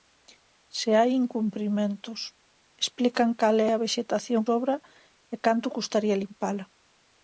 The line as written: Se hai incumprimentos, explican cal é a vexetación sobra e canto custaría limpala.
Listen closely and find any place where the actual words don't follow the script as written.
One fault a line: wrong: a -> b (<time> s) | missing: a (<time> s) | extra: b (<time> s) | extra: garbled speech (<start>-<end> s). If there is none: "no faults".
no faults